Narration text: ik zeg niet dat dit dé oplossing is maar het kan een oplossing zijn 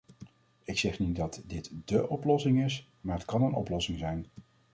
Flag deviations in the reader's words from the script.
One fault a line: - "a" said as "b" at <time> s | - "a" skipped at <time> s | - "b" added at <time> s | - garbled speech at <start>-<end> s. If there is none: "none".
none